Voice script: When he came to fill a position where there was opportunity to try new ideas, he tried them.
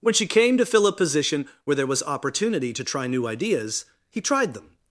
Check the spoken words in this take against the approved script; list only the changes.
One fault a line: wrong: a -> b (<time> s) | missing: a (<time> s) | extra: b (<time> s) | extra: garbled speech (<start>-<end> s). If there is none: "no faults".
wrong: he -> she (0.1 s)